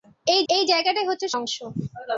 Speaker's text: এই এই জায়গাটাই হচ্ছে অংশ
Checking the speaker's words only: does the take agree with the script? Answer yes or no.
yes